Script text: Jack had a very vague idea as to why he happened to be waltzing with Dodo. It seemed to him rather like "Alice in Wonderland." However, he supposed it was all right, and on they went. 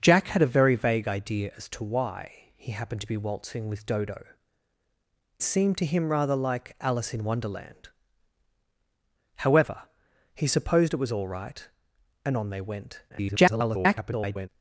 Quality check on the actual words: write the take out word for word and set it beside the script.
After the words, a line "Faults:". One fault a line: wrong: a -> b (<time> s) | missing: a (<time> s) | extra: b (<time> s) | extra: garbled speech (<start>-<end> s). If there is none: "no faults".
Jack had a very vague idea as to why he happened to be waltzing with Dodo. Seemed to him rather like "Alice in Wonderland." However, he supposed it was all right, and on they went. [garbled]
Faults:
missing: It (4.2 s)
extra: garbled speech (13.1-14.5 s)